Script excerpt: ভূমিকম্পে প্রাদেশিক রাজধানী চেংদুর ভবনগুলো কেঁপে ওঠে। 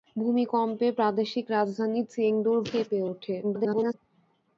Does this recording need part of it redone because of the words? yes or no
yes